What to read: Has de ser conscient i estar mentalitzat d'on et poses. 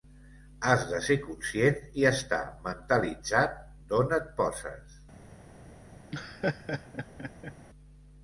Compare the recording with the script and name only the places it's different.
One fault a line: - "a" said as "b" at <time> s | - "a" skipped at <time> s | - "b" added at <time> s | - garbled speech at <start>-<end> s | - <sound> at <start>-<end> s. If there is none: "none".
- laugh at 6.1-7.5 s